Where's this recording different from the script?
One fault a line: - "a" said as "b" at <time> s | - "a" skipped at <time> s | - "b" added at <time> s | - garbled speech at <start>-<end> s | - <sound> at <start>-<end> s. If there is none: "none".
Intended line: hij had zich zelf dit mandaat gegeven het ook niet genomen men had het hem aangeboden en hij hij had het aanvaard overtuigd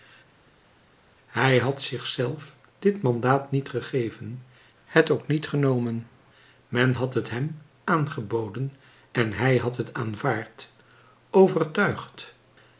- "niet" added at 3.5 s
- "hij" skipped at 9.6 s